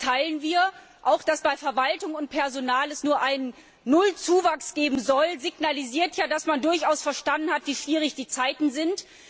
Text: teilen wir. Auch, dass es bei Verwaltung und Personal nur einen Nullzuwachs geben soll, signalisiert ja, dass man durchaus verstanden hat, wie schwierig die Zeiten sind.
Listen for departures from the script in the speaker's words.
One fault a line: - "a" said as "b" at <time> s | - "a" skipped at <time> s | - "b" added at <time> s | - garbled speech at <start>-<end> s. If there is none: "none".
none